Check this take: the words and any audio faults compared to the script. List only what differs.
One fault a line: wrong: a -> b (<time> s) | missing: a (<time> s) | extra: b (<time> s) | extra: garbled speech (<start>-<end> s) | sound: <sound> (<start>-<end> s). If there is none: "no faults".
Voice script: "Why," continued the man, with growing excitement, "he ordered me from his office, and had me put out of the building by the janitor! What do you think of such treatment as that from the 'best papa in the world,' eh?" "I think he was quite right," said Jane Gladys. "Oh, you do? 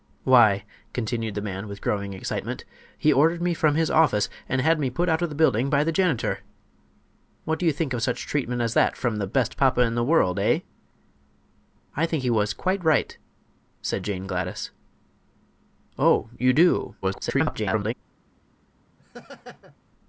extra: garbled speech (17.0-17.9 s)
sound: laugh (19.0-19.8 s)